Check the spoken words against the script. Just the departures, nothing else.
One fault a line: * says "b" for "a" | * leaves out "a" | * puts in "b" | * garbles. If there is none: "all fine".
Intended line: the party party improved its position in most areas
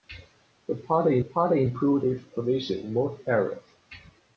all fine